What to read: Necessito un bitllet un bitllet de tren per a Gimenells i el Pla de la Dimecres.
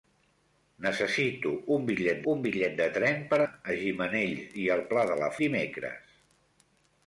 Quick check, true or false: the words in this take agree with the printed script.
true